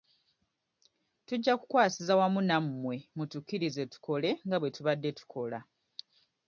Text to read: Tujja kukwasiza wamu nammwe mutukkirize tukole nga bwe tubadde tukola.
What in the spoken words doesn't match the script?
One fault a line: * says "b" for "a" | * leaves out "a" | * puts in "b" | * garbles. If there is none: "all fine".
all fine